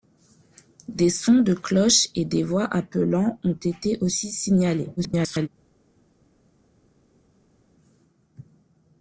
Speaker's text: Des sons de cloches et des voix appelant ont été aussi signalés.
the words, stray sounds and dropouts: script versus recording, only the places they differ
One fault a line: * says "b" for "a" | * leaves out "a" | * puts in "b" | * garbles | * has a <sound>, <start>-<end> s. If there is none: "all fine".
* garbles